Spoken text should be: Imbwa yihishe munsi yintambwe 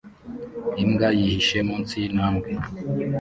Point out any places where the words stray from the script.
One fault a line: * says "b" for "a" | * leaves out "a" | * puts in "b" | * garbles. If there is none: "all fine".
all fine